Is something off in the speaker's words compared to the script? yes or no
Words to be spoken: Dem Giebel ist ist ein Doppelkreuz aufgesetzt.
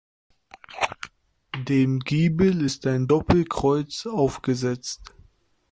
yes